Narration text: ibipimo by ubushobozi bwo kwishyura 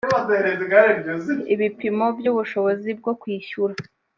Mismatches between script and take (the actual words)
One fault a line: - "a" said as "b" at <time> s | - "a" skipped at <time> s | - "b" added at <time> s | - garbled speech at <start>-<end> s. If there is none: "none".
none